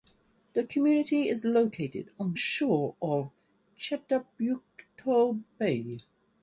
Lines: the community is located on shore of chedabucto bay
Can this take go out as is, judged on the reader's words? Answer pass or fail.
pass